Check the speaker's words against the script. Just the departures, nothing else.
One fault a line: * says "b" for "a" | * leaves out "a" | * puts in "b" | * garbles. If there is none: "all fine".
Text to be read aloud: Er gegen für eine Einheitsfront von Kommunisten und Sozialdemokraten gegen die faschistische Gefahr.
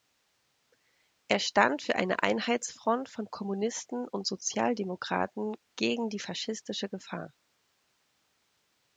* says "stand" for "gegen"